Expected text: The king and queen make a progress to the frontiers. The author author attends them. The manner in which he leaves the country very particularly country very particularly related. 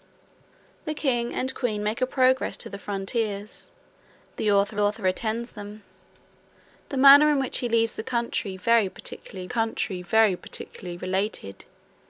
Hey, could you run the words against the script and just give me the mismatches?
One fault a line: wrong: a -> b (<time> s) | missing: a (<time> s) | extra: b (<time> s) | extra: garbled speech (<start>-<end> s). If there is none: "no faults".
no faults